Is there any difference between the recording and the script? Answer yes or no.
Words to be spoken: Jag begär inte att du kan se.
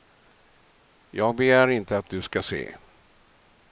yes